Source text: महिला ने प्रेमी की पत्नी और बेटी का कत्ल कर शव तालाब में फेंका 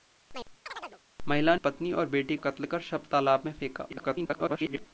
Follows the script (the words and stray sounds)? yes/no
no